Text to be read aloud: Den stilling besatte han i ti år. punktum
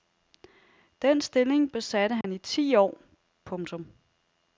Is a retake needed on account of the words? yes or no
no